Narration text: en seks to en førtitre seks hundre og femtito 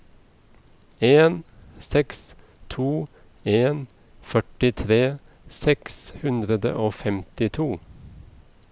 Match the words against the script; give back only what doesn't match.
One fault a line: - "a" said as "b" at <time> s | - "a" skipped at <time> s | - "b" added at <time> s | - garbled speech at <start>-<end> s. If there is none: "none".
none